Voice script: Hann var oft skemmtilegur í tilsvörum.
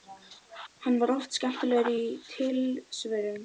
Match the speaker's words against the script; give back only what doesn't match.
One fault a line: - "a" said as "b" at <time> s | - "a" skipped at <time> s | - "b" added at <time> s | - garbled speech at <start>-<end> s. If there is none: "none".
none